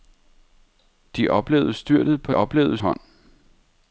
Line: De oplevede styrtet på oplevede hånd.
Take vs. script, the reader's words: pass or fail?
pass